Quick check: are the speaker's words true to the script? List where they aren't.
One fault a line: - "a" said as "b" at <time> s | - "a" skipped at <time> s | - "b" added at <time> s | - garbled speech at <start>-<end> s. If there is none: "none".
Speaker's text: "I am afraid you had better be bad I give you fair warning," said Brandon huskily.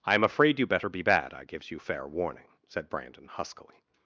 - "had" skipped at 0.7 s
- "give" said as "gives" at 1.4 s